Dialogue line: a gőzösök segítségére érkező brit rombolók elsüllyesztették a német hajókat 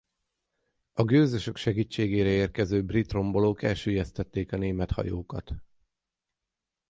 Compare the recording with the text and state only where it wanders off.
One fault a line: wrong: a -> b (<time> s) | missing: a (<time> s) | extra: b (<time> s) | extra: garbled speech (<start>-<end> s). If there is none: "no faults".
no faults